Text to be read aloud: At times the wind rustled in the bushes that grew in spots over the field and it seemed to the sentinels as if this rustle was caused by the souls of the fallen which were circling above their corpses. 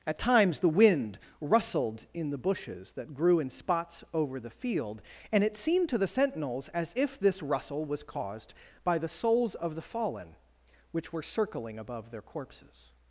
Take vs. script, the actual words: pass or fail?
pass